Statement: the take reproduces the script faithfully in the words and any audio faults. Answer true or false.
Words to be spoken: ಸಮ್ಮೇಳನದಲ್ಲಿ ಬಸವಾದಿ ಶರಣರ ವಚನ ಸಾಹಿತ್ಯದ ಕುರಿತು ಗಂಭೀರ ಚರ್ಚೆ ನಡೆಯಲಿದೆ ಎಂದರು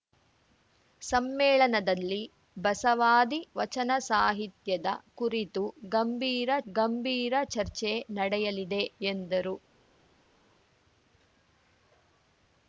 false